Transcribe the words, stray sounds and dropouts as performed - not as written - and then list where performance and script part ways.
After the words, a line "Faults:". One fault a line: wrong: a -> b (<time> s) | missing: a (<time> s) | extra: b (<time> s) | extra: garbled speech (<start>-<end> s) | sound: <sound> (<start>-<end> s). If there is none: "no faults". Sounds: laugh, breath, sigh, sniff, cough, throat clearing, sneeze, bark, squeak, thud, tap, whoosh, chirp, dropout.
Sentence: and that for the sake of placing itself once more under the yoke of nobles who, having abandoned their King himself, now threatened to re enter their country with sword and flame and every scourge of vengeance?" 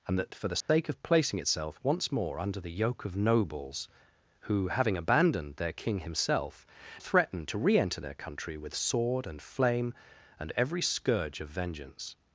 and that for the sake of placing itself once more under the yoke of nobles who, having abandoned their King himself, threatened to re enter their country with sword and flame and every scourge of vengeance?"
Faults:
sound: dropout (0.6-0.7 s)
missing: now (6.7 s)